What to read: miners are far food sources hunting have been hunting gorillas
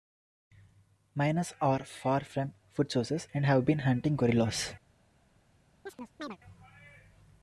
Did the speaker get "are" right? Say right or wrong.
right